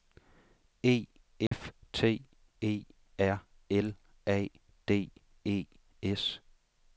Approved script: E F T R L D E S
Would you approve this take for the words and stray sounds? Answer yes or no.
no